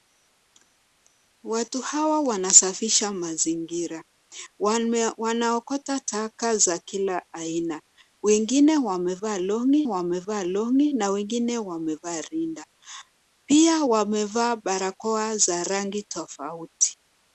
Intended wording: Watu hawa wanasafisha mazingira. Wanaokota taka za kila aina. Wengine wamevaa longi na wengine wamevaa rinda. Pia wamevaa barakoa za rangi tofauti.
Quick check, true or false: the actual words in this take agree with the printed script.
false